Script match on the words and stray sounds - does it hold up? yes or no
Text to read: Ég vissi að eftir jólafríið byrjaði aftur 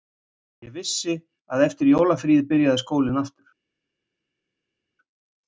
no